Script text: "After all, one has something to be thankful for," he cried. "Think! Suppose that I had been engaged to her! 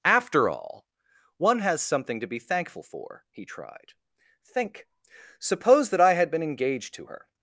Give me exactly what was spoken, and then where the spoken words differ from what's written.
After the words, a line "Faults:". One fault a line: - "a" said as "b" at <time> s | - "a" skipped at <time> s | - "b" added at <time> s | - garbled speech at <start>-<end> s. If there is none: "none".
"After all, one has something to be thankful for," he tried. "Think! Suppose that I had been engaged to her!
Faults:
- "cried" said as "tried" at 3.5 s